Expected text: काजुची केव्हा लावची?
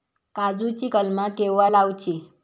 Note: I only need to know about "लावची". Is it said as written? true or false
true